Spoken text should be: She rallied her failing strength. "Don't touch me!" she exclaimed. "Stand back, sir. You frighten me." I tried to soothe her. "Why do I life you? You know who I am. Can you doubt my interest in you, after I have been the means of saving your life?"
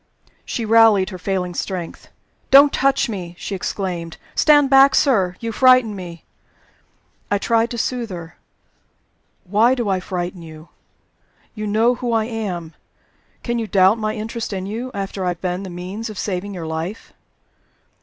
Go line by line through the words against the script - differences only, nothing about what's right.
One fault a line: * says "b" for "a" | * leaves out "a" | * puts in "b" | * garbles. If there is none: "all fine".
* says "frighten" for "life"